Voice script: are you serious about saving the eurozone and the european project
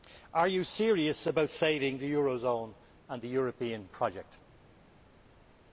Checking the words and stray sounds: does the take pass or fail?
pass